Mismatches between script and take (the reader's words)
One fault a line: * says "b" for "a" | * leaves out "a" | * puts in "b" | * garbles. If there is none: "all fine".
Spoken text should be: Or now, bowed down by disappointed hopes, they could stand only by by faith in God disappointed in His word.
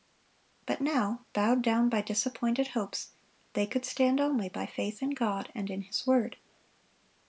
* says "But" for "Or"
* leaves out "by"
* says "and" for "disappointed"